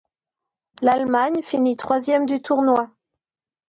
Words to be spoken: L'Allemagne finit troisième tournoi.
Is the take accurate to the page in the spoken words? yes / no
no